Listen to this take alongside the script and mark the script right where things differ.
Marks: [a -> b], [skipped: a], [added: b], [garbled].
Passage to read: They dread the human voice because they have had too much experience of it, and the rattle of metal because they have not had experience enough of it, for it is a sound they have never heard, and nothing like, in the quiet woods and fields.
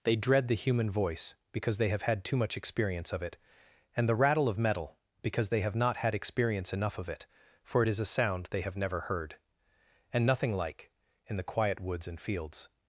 They dread the human voice because they have had too much experience of it, and the rattle of metal because they have not had experience enough of it, for it is a sound they have never heard, and nothing like, in the quiet woods and fields.